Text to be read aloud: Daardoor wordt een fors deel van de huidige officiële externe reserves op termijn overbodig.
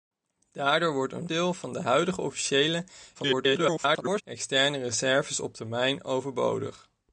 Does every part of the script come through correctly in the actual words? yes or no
no